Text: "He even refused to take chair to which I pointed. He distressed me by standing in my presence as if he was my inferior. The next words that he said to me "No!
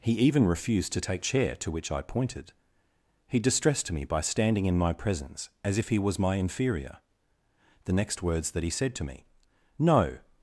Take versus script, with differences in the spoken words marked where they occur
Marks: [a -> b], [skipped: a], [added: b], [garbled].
"He even refused to take chair to which I pointed. He distressed me by standing in my presence as if he was my inferior. The next words that he said to me "No!